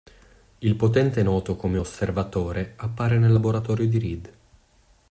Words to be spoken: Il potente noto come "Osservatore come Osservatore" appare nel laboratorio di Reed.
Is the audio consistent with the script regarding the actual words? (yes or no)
no